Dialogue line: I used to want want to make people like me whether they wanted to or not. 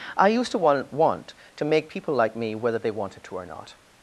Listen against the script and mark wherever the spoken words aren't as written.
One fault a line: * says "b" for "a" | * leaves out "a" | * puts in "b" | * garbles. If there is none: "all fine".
all fine